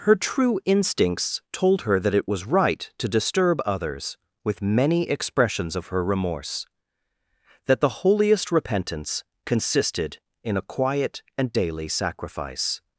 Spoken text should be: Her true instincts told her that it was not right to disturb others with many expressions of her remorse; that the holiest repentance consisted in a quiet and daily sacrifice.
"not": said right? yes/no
no